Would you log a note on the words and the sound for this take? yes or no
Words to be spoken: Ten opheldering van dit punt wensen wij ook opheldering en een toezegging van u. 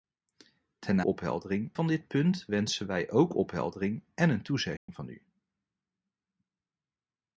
yes